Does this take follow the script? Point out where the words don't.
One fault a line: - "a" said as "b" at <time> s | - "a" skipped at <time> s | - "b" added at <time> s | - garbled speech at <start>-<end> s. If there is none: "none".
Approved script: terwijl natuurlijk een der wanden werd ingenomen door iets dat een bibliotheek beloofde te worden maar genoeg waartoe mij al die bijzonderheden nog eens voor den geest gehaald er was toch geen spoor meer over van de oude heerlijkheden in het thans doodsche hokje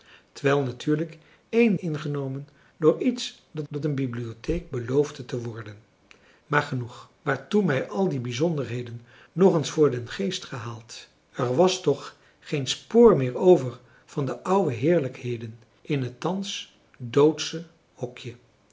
- "der wanden werd" skipped at 1.8 s
- "dat" added at 3.7 s